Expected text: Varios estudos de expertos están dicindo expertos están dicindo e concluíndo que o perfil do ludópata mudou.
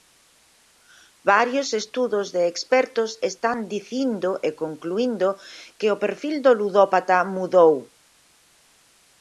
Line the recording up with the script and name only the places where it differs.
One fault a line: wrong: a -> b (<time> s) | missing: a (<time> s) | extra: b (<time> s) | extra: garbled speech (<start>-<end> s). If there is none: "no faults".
missing: expertos están dicindo (4.3 s)